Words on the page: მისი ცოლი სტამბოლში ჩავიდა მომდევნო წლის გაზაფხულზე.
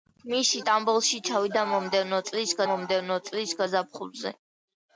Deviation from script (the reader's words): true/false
true